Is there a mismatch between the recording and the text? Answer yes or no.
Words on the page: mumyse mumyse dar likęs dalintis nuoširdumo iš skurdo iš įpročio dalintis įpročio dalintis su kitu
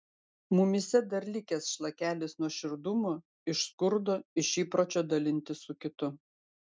yes